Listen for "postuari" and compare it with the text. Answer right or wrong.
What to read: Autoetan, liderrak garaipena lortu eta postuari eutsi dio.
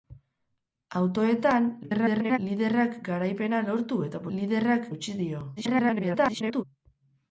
wrong